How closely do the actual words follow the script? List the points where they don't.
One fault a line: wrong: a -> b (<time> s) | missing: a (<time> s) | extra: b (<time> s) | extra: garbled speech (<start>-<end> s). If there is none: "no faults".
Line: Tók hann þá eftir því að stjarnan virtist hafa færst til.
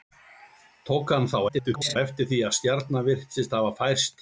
extra: garbled speech (1.5-2.0 s)